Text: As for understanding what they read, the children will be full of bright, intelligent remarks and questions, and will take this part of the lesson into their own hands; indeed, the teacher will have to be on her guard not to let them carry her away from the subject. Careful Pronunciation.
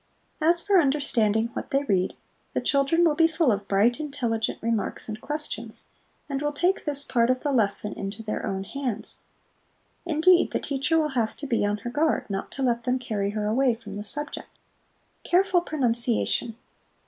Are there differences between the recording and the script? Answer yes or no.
no